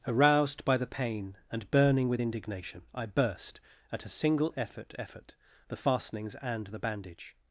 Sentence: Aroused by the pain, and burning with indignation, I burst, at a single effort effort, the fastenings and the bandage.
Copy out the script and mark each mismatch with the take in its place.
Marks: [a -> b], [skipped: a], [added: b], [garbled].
Aroused by the pain, and burning with indignation, I burst, at a single effort effort, the fastenings and the bandage.